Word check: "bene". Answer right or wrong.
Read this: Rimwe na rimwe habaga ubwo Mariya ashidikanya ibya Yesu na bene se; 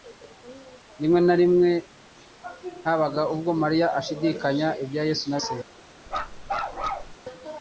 wrong